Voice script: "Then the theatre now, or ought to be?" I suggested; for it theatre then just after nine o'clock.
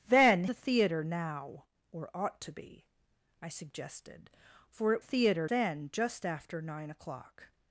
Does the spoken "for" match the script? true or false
true